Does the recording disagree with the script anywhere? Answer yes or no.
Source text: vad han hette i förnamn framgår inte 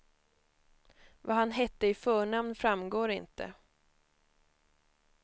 no